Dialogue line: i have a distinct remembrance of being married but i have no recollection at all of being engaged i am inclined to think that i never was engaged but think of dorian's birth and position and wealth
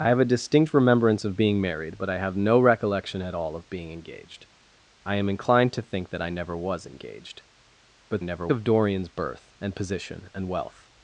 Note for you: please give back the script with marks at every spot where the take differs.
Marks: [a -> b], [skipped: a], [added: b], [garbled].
i have a distinct remembrance of being married but i have no recollection at all of being engaged i am inclined to think that i never was engaged but [think -> never] of dorian's birth and position and wealth